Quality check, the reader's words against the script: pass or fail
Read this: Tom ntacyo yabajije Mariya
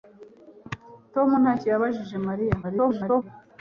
fail